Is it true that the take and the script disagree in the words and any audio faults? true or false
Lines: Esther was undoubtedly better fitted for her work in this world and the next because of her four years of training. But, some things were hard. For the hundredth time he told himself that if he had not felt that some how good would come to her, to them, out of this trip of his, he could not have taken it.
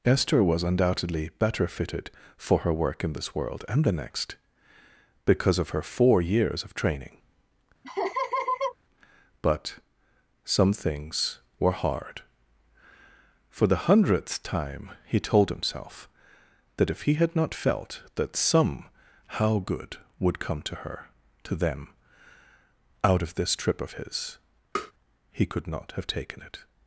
true